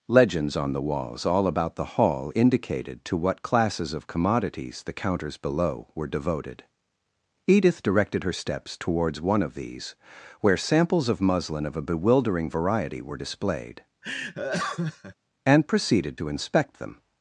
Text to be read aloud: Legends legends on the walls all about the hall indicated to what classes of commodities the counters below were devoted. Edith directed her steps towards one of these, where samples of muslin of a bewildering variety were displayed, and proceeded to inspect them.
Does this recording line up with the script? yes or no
no